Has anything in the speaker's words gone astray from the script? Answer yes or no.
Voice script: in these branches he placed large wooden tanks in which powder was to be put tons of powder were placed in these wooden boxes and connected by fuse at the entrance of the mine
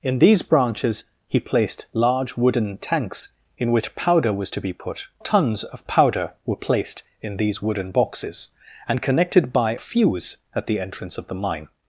no